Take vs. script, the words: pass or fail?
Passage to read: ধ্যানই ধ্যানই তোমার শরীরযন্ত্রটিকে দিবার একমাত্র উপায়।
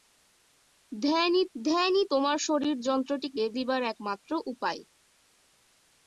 pass